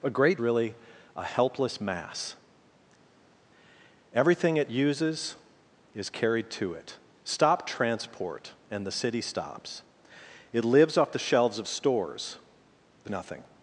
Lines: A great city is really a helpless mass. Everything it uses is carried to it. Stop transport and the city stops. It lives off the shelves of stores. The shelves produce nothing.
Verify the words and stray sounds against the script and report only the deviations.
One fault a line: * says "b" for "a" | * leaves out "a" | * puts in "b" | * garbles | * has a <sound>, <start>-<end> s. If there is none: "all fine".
* leaves out "city is"
* leaves out "shelves produce"